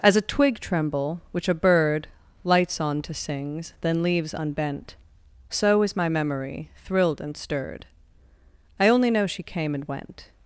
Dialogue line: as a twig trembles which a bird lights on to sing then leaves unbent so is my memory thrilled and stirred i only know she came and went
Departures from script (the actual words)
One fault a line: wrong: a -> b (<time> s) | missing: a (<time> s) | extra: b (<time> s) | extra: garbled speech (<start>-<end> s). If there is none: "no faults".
wrong: trembles -> tremble (0.6 s)
wrong: sing -> sings (3.1 s)